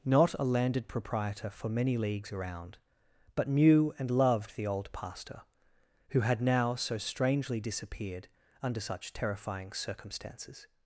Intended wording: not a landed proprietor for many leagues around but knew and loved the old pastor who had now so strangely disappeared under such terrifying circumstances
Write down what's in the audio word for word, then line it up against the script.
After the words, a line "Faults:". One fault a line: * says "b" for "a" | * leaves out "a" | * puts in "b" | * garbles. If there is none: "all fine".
not a landed proprietor for many leagues around but knew and loved the old pastor who had now so strangely disappeared under such terrifying circumstances
Faults:
all fine